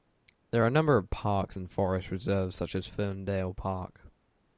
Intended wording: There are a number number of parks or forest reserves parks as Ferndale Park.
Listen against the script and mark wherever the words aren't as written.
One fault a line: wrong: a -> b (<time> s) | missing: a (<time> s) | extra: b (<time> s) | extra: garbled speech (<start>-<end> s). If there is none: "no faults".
missing: number (1.0 s)
wrong: or -> and (1.6 s)
wrong: parks -> such (2.6 s)